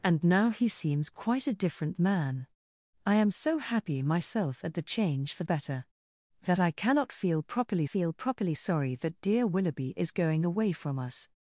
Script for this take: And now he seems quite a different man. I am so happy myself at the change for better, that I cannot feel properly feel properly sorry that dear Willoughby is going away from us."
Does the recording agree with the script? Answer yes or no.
yes